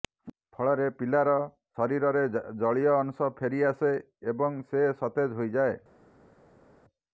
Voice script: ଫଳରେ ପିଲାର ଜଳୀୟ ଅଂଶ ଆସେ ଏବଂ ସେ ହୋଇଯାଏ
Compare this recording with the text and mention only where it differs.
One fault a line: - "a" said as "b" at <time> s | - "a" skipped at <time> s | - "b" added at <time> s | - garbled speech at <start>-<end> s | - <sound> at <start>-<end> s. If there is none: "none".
- "ଶରୀରରେ" added at 1.8 s
- "ଫେରି" added at 3.4 s
- "ସତେଜ" added at 5.0 s